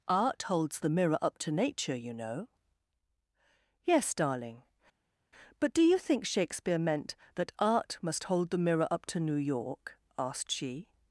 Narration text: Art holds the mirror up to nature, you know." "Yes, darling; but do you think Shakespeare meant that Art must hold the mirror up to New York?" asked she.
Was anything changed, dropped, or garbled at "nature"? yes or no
no